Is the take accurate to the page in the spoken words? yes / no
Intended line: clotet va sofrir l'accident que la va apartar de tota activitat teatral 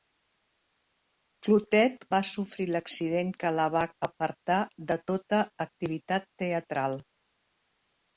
yes